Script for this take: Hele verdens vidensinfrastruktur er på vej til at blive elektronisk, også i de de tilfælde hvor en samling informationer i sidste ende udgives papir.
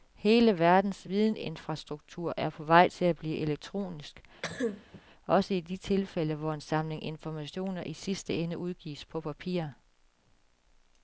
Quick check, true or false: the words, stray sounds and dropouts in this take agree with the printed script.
false